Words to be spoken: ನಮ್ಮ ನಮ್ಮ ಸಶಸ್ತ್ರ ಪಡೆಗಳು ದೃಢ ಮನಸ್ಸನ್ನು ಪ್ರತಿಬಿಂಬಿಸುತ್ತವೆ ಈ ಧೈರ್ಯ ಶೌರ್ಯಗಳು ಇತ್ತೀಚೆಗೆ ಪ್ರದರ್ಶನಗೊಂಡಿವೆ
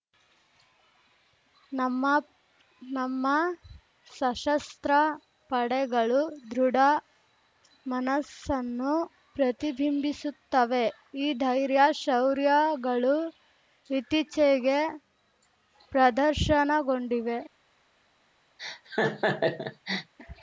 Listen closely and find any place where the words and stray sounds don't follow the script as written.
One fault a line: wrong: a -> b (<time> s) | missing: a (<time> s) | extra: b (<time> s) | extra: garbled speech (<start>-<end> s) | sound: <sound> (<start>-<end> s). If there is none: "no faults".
sound: laugh (18.6-20.1 s)